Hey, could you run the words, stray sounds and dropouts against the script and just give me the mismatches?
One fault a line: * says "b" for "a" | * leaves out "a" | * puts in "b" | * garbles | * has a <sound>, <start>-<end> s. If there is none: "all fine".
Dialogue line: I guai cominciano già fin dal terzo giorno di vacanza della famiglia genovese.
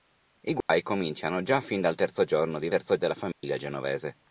* has a dropout, 0.6-0.7 s
* says "terzo" for "vacanza"
* has a dropout, 3.3-3.4 s